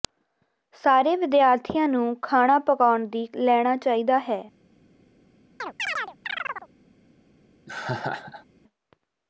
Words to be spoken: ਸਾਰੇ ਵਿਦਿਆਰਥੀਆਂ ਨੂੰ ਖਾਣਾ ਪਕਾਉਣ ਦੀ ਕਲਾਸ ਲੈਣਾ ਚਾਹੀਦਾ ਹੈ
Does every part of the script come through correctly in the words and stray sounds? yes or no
no